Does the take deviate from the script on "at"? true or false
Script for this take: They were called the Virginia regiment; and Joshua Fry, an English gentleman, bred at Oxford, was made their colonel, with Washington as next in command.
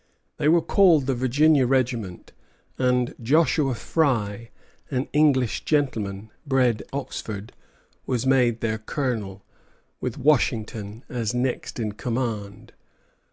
true